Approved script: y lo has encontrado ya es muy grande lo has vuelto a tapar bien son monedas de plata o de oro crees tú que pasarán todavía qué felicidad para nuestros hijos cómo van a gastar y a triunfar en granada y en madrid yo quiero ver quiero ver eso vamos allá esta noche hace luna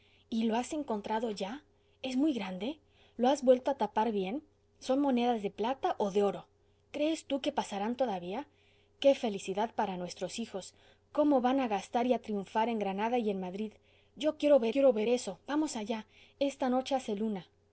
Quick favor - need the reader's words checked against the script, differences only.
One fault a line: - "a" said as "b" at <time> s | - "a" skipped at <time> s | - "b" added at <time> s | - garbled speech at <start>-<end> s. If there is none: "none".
none